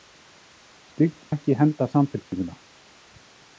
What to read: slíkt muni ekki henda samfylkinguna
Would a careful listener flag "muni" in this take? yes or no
yes